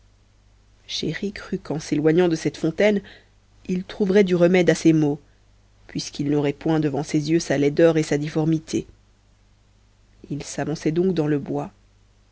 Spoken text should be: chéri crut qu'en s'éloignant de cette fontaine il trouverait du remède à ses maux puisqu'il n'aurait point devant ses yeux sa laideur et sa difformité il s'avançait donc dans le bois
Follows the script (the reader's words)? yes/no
yes